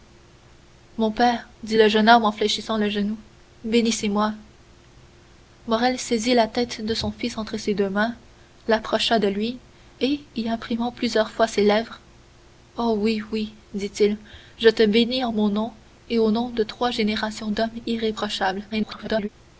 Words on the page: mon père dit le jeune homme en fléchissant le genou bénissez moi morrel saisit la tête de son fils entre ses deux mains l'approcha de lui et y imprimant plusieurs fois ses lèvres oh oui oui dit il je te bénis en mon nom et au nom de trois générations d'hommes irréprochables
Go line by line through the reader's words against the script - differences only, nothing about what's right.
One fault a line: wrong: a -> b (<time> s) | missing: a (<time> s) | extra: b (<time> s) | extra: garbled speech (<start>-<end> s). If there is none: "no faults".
extra: garbled speech (18.7-19.3 s)